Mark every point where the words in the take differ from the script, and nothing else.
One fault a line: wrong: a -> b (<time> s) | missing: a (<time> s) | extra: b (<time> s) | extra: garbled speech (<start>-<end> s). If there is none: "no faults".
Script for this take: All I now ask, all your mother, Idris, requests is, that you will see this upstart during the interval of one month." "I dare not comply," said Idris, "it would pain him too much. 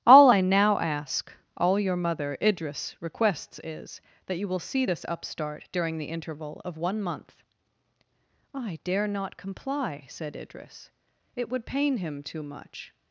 no faults